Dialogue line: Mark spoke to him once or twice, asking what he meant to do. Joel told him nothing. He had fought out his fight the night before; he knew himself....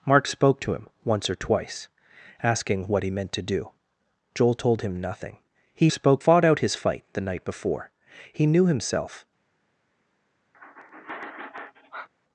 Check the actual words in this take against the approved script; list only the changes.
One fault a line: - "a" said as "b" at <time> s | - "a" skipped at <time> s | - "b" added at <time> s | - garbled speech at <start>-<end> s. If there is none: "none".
- "had" said as "spoke" at 5.9 s